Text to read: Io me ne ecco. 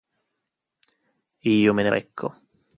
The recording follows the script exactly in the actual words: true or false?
true